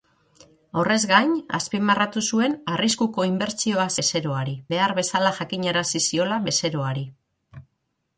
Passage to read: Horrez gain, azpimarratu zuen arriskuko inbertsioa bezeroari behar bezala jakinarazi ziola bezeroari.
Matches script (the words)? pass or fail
pass